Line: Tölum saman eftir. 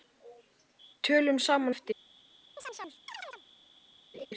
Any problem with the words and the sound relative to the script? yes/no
yes